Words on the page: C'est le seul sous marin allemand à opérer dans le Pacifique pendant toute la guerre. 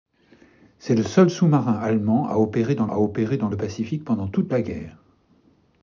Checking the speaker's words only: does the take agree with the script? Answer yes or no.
no